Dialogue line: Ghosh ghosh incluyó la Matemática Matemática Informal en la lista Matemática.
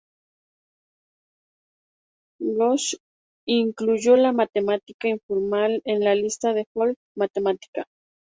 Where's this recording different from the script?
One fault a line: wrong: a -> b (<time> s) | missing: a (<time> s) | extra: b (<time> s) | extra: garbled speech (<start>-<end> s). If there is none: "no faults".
missing: ghosh (3.0 s)
missing: Matemática (5.1 s)
extra: de Folk (6.5 s)